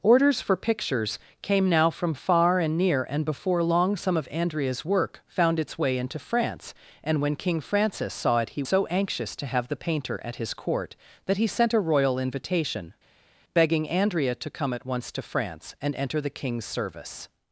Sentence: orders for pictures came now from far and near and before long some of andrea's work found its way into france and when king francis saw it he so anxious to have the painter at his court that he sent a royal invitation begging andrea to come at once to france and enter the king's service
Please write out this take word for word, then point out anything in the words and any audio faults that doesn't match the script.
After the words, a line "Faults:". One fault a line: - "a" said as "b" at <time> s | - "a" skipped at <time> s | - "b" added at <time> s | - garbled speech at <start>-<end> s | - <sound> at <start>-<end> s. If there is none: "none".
orders for pictures came now from far and near and before long some of andrea's work found its way into france and when king francis saw it he so anxious to have the painter at his court that he sent a royal invitation begging andrea to come at once to france and enter the king's service
Faults:
none